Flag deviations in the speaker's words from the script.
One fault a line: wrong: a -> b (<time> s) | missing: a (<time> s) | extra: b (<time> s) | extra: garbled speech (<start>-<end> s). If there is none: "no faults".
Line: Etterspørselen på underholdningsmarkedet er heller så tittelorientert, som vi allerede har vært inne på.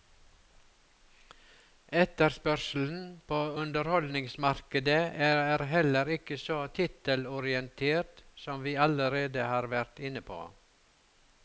extra: ikke (6.2 s)